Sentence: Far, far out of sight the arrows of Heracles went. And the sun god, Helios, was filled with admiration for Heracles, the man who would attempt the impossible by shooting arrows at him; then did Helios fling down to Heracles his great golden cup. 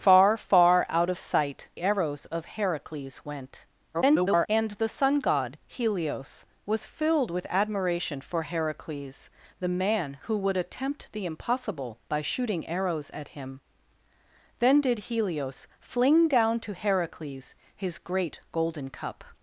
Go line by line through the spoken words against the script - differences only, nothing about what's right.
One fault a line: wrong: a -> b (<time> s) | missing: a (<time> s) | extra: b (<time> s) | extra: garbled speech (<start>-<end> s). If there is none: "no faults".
missing: the (1.7 s)
extra: garbled speech (3.9-4.5 s)